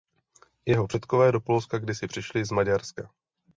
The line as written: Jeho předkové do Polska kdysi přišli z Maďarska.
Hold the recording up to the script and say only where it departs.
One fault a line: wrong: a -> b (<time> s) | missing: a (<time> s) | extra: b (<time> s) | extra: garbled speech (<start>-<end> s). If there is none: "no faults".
no faults